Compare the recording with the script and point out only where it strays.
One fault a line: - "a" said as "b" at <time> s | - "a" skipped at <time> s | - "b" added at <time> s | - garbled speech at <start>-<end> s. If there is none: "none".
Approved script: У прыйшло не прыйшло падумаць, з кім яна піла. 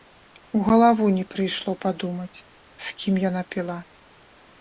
- "прыйшло" said as "галаву" at 0.7 s